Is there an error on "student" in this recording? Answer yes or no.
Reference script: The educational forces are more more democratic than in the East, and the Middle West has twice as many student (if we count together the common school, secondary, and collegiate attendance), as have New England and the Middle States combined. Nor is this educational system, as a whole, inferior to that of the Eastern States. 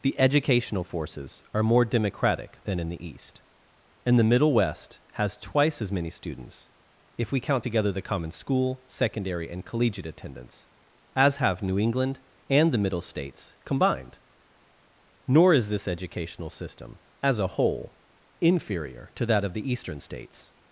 yes